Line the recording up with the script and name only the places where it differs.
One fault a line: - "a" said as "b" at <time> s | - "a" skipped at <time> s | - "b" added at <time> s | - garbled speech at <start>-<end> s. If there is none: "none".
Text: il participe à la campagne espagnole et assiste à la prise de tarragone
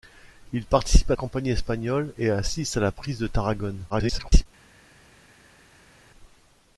- "la" skipped at 1.1 s
- garbled speech at 3.9-4.5 s